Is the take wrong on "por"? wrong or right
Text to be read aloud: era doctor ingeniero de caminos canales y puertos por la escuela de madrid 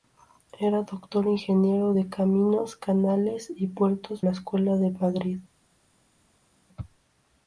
wrong